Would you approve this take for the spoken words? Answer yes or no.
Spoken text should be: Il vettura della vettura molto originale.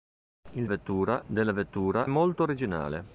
yes